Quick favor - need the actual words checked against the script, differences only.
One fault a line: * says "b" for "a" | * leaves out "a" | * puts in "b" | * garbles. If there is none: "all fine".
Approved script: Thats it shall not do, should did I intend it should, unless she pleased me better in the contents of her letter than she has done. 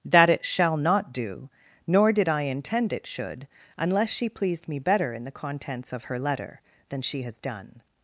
* says "That" for "Thats"
* says "nor" for "should"